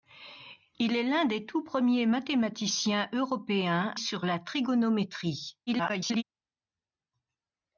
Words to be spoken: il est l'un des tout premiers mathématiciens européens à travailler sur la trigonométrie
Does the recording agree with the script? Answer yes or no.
no